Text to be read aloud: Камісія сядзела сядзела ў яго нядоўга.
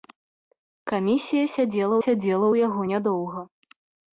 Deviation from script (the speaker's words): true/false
false